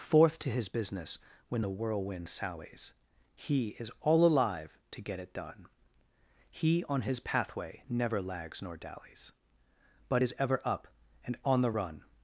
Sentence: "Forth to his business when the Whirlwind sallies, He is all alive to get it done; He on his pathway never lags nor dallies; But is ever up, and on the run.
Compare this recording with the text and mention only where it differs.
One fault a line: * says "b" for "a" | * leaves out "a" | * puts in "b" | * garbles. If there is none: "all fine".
all fine